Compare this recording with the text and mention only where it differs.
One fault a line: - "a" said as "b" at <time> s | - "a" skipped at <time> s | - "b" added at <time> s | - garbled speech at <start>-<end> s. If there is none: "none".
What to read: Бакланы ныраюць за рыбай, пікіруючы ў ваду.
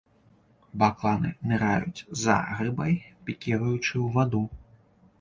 none